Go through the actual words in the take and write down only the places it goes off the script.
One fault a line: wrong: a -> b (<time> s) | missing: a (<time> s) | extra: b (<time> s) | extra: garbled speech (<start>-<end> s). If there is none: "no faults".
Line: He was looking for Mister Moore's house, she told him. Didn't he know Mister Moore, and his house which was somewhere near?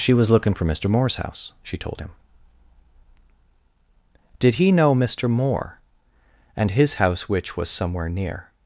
wrong: He -> She (0.0 s)
wrong: Didn't -> Did (4.4 s)